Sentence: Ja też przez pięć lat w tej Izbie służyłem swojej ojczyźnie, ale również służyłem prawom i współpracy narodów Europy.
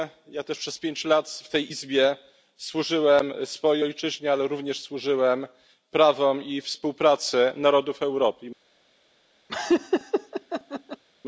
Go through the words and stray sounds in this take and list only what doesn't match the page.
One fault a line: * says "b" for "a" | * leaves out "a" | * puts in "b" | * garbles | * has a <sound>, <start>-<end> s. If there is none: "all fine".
* has a laugh, 9.5-11.0 s